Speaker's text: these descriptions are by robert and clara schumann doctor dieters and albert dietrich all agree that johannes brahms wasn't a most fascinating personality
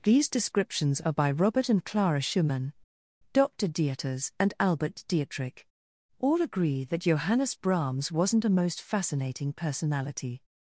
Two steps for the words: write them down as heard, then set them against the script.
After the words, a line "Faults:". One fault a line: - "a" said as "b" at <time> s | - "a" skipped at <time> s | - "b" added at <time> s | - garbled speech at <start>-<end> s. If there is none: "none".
these descriptions are by robert and clara schumann doctor dieters and albert dietrich all agree that johannes brahms wasn't a most fascinating personality
Faults:
none